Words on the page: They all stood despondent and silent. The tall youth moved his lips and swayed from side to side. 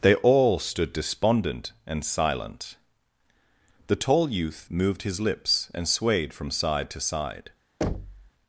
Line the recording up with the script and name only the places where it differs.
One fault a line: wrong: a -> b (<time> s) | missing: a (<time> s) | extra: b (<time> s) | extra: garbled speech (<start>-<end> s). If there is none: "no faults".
no faults